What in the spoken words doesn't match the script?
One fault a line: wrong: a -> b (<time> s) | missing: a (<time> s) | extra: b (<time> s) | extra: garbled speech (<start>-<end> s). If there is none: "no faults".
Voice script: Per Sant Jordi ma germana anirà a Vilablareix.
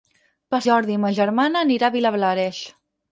missing: Sant (0.6 s)